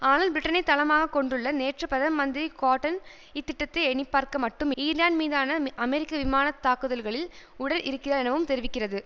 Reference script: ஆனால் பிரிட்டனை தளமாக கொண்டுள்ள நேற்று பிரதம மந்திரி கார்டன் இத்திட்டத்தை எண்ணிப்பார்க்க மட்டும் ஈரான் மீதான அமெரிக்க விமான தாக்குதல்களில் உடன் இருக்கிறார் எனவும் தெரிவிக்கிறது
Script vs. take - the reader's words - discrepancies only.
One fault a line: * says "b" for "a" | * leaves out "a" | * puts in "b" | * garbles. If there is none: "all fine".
all fine